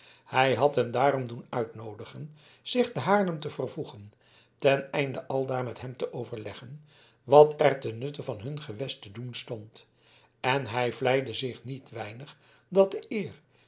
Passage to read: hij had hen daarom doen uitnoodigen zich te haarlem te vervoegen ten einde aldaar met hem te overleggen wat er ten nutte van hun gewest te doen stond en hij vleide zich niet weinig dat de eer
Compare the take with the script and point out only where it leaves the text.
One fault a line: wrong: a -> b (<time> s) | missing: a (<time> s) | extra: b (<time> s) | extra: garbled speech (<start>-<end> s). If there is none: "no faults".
no faults